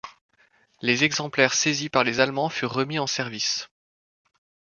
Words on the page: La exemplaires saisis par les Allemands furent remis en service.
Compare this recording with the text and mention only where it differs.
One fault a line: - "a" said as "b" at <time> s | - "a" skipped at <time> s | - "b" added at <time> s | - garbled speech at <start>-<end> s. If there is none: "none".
- "La" said as "Les" at 0.8 s